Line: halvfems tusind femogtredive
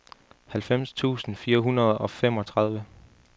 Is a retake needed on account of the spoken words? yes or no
yes